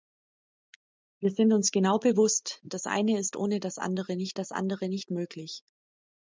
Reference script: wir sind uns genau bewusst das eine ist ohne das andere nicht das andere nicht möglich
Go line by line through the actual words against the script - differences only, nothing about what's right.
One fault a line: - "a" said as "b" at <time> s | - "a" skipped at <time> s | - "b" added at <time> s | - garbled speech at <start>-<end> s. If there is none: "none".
none